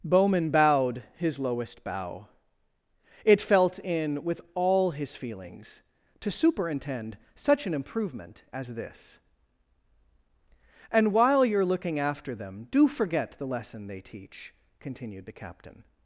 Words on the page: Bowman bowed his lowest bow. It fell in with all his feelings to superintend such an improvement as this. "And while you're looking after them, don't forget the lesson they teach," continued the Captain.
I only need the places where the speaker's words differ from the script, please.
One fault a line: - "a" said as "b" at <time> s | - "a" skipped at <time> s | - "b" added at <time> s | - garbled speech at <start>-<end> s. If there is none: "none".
- "fell" said as "felt" at 3.4 s
- "don't" said as "do" at 12.7 s